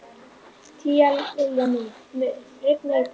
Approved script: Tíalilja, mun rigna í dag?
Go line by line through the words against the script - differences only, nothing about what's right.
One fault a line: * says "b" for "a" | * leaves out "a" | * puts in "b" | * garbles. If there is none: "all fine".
all fine